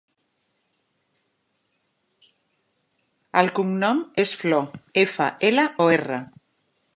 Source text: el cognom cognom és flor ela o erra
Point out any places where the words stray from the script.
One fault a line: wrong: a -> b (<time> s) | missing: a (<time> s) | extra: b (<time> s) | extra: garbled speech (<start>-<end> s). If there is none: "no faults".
missing: cognom (4.0 s)
extra: efa (5.1 s)